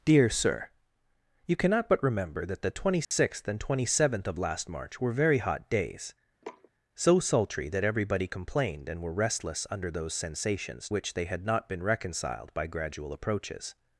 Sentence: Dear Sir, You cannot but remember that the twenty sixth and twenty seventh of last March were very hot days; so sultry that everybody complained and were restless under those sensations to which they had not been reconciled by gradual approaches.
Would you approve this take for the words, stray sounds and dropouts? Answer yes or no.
no